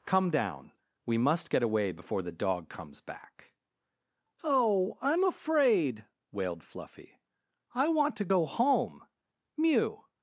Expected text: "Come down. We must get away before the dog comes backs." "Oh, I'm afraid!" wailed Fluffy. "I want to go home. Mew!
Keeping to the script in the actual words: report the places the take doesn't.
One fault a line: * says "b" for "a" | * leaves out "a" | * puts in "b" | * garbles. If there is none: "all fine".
* says "back" for "backs"